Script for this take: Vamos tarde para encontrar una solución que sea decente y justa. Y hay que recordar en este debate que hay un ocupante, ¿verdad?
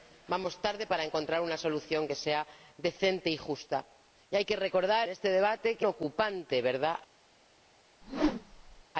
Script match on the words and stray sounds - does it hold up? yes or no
no